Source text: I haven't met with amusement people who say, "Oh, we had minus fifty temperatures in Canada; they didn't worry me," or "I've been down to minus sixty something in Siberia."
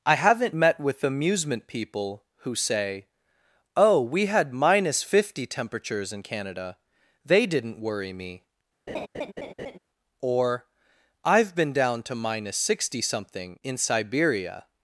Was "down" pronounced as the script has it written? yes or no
yes